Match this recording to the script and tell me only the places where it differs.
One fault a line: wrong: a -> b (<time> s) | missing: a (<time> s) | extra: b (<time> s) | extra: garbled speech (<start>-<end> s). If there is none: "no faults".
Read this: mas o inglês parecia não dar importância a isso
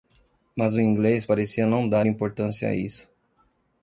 no faults